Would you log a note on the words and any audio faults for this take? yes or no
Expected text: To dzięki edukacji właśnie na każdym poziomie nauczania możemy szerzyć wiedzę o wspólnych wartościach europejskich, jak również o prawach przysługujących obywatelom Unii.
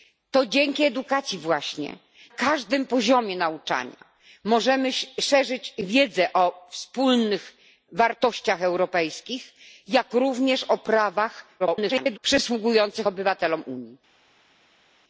yes